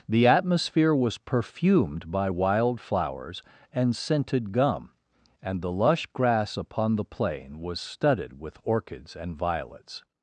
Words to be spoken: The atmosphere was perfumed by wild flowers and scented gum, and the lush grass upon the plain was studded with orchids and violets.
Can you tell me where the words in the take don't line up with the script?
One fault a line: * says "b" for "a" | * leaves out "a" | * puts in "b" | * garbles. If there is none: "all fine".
all fine